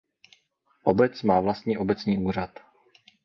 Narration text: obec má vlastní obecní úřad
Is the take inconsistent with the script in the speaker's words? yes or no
no